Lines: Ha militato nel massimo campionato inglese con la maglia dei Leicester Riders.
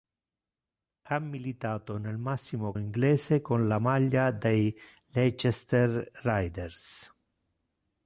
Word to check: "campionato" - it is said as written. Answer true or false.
false